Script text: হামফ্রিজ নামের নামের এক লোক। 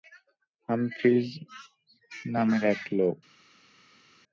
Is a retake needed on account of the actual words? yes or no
yes